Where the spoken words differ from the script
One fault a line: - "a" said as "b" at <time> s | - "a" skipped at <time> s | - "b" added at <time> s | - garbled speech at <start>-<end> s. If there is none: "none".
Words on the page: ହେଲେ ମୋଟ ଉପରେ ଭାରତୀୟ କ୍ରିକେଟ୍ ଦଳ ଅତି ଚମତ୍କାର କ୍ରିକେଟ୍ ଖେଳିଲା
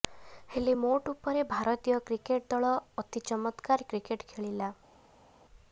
none